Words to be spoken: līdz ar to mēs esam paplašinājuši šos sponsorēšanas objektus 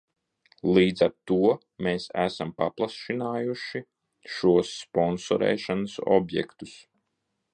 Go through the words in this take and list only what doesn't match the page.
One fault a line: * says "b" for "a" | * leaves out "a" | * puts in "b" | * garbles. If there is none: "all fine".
all fine